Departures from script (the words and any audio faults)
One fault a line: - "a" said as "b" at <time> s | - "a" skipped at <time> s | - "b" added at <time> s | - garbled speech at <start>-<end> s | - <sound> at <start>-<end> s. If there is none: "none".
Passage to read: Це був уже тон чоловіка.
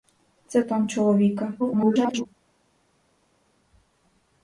- "був уже" skipped at 0.6 s
- garbled speech at 1.6-2.3 s